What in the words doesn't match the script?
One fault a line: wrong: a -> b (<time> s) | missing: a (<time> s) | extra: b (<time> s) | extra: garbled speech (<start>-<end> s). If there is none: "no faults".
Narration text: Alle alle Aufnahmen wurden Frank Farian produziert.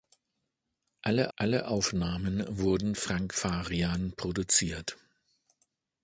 no faults